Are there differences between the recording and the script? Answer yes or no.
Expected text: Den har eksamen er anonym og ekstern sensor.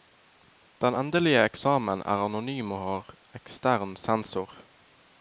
yes